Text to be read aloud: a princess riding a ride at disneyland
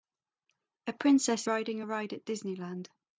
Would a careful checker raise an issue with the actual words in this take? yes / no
no